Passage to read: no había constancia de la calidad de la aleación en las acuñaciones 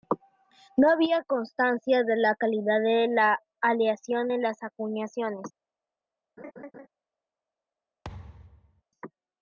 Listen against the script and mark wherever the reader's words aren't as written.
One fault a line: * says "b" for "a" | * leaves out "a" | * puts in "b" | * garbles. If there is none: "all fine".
all fine